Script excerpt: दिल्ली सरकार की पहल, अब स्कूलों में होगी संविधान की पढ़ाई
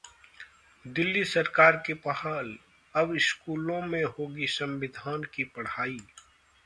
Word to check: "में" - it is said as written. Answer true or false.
true